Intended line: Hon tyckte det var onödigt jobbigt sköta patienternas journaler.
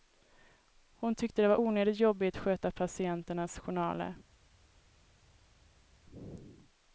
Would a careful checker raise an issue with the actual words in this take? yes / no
no